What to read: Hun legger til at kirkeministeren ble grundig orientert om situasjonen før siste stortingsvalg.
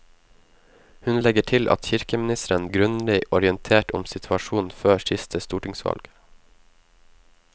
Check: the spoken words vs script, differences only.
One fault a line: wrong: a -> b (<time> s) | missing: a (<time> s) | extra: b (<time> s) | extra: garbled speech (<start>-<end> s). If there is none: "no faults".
missing: ble (2.7 s)